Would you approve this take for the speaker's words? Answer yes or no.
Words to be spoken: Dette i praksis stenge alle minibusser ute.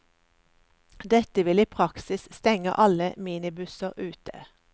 no